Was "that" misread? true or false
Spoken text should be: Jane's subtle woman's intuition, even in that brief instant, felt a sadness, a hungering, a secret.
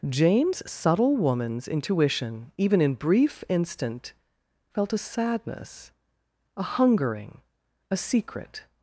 true